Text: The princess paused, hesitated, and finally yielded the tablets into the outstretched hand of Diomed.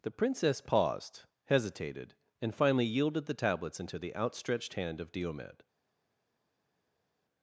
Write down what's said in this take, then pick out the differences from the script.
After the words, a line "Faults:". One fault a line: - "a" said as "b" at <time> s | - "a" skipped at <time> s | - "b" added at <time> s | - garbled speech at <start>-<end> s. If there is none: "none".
The princess paused, hesitated, and finally yielded the tablets into the outstretched hand of Diomed.
Faults:
none